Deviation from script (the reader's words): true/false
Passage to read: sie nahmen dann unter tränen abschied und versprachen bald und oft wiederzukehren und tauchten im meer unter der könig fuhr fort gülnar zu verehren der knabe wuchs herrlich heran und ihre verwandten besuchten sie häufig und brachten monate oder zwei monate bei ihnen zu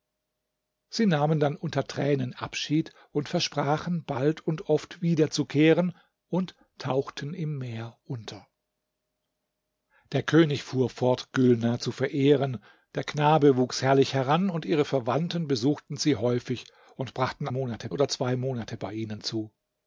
false